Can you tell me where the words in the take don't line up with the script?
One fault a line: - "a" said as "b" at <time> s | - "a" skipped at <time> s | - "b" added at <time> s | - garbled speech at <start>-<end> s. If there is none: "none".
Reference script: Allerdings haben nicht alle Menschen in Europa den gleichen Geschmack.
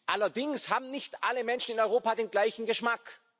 none